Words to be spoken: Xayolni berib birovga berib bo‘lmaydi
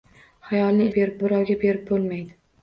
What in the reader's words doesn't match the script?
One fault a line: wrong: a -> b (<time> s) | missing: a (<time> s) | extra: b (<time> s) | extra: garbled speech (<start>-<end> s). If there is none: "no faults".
no faults